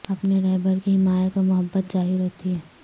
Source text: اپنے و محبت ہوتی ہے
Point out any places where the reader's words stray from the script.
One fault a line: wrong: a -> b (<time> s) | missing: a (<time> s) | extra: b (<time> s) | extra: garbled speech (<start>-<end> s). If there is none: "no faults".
extra: رہبر کی حمایت (0.4 s)
extra: ظاہر (1.9 s)